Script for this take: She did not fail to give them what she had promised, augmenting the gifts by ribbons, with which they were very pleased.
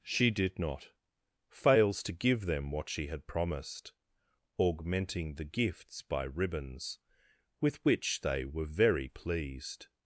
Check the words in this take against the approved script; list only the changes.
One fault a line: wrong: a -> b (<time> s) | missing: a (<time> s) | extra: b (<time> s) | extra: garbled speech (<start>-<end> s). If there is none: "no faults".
wrong: fail -> fails (1.5 s)